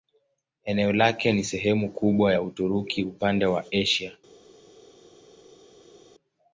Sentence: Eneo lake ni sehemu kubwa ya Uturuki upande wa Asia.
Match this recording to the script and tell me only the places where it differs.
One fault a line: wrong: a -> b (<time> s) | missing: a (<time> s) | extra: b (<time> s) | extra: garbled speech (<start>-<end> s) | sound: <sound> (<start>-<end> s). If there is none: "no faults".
no faults